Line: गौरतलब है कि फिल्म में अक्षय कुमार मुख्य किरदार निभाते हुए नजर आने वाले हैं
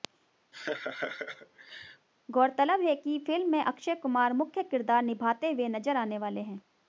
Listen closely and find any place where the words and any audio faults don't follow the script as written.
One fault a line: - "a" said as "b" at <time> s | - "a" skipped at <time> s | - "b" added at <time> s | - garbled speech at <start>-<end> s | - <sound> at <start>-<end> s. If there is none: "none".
- laugh at 0.5-2.1 s